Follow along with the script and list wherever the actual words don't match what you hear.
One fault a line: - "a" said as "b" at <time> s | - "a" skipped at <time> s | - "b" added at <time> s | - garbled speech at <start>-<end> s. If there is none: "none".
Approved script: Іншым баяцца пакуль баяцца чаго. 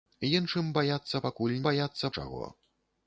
none